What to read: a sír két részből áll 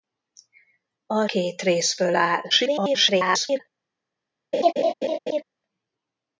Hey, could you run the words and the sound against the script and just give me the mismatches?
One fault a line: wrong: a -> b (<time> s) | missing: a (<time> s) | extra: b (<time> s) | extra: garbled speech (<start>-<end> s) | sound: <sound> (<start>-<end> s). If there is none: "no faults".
missing: sír (1.3 s)
extra: garbled speech (2.5-3.6 s)
sound: laugh (4.5-5.4 s)